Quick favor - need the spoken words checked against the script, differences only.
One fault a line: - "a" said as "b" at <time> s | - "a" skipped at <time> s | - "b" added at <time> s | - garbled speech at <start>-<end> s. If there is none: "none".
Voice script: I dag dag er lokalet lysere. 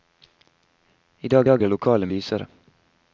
none